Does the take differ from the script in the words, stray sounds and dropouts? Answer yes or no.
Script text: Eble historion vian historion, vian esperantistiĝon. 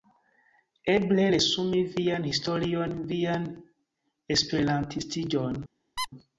yes